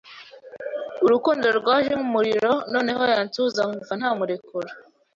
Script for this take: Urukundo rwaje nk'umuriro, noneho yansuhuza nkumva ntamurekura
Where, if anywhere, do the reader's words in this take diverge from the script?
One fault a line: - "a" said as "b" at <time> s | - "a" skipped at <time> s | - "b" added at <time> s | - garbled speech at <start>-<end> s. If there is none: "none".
none